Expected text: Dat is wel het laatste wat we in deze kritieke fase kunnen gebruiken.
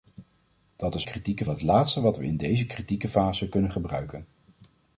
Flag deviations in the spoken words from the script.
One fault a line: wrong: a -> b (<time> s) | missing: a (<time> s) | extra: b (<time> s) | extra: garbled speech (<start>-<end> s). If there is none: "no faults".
wrong: wel -> kritieke (1.0 s)